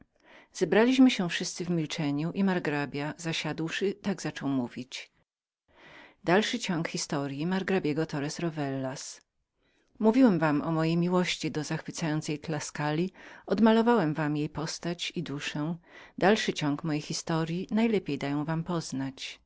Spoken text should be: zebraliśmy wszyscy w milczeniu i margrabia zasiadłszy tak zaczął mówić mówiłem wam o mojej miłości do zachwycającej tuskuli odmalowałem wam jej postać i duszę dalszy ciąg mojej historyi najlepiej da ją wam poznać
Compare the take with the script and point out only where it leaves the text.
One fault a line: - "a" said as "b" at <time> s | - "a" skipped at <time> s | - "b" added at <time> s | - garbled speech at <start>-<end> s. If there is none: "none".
- "się" added at 1.1 s